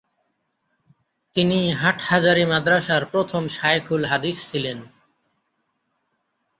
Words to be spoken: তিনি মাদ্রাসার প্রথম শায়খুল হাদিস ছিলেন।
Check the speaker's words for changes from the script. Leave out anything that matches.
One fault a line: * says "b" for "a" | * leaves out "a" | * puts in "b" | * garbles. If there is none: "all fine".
* puts in "হাটহাজারী"